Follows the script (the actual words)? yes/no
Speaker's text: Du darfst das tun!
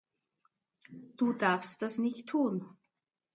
no